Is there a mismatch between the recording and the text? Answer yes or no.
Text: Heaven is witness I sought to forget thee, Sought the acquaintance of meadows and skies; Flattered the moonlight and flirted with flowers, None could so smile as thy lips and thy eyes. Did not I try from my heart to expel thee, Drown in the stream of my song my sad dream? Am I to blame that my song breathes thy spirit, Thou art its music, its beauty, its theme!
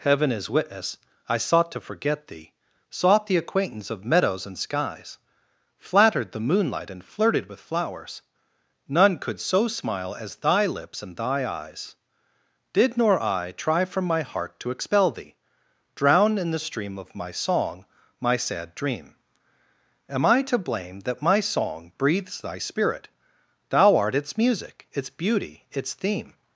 yes